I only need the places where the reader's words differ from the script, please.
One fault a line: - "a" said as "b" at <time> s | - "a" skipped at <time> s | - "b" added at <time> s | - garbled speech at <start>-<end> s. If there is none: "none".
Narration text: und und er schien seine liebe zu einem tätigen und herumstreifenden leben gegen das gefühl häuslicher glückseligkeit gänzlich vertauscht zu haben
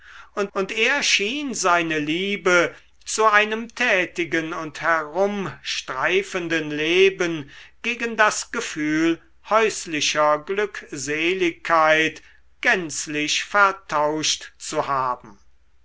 none